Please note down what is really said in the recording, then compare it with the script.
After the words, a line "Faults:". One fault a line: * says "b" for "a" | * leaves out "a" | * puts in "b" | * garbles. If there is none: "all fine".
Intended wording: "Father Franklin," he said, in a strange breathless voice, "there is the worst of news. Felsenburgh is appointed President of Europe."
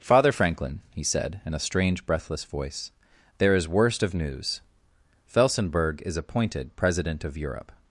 "Father Franklin," he said, in a strange breathless voice, "there is worst of news. Felsenburgh is appointed President of Europe."
Faults:
* leaves out "the"